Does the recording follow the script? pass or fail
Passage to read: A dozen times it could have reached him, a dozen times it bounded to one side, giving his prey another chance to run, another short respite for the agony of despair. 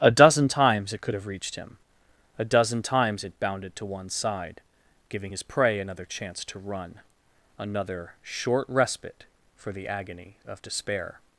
pass